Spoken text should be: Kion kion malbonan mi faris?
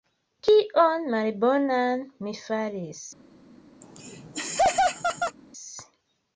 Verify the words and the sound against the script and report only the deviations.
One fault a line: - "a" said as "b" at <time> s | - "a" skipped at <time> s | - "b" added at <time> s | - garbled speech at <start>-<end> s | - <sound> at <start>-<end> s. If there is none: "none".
- "kion" skipped at 1.0 s
- laugh at 3.8-5.4 s